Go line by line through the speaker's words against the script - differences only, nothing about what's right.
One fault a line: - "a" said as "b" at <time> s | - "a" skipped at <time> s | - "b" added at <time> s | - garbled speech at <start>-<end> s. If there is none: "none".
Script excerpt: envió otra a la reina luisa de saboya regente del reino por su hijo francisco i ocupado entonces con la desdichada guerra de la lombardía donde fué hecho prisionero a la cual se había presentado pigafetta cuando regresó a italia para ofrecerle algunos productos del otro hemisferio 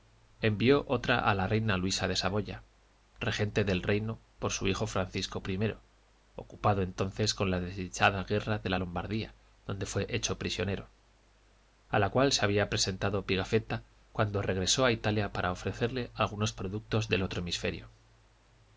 none